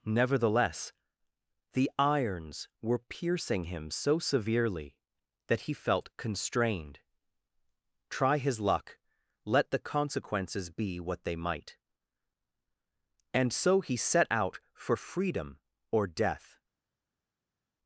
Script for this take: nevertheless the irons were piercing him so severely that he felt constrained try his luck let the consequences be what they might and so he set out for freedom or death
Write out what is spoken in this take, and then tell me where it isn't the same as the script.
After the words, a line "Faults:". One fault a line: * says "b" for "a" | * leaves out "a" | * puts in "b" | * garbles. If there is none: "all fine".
nevertheless the irons were piercing him so severely that he felt constrained try his luck let the consequences be what they might and so he set out for freedom or death
Faults:
all fine